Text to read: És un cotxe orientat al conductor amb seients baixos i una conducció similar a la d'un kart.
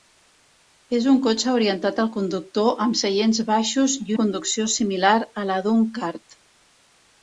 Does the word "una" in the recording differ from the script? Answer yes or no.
yes